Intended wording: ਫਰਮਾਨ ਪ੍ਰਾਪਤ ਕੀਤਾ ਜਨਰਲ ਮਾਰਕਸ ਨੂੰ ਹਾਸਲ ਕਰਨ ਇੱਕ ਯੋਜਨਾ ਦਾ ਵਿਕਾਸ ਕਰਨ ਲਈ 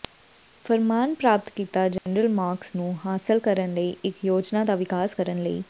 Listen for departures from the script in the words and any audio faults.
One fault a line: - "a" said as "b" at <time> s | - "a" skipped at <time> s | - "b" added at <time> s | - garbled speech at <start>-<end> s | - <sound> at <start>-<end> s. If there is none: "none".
- dropout at 2.0-2.1 s
- "ਲਈ" added at 3.7 s